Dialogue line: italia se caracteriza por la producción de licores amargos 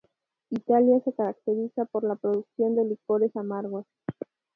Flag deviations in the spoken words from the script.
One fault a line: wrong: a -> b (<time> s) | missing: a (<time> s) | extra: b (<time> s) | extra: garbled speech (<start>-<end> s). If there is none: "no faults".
no faults